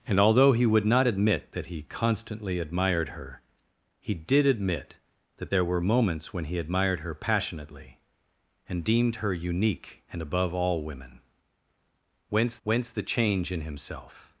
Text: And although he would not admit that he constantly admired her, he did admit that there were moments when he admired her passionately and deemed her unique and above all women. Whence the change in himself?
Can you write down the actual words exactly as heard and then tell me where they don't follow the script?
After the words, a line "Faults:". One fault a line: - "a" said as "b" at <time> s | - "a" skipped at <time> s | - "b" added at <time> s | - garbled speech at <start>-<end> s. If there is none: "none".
And although he would not admit that he constantly admired her, he did admit that there were moments when he admired her passionately and deemed her unique and above all women. Whence whence the change in himself?
Faults:
- "whence" added at 12.6 s